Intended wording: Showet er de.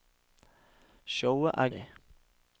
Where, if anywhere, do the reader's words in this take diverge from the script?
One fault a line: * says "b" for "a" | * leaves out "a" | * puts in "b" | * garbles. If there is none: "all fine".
all fine